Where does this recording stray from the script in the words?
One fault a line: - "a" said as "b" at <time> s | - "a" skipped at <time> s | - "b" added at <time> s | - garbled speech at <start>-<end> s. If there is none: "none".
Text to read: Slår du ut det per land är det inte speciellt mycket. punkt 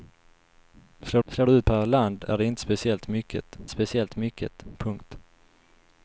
- "slår" added at 1.3 s
- "det" skipped at 1.7 s
- "speciellt mycket" added at 3.7 s